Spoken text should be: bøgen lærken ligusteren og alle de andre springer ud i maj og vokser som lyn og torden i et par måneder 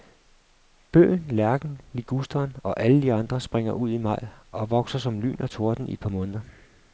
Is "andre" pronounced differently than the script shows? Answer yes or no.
no